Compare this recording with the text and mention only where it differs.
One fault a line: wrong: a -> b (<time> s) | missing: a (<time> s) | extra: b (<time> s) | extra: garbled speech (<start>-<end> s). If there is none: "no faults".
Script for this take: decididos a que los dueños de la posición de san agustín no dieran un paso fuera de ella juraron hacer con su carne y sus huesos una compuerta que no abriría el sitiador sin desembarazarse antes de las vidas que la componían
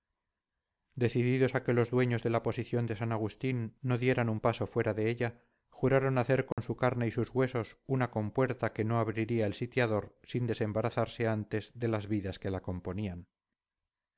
no faults